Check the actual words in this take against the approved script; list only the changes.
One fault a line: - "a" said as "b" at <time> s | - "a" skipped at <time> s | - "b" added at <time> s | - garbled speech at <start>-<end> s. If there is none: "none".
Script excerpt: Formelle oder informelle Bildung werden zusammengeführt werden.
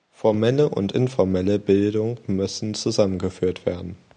- "oder" said as "und" at 0.7 s
- "werden" said as "müssen" at 2.3 s